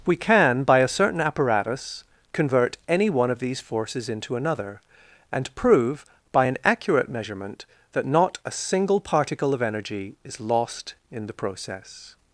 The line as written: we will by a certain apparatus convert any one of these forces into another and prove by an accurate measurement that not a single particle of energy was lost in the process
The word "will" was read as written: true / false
false